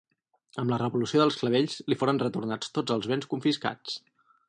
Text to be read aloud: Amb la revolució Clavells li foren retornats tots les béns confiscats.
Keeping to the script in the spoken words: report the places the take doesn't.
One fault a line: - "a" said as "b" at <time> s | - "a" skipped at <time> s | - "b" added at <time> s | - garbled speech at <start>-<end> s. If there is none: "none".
- "dels" added at 1.2 s
- "les" said as "els" at 3.0 s